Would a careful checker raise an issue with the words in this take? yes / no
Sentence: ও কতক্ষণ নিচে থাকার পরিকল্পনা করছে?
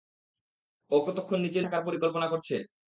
no